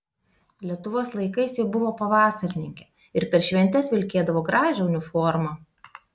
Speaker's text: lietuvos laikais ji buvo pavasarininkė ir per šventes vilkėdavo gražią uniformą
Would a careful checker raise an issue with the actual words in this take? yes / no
no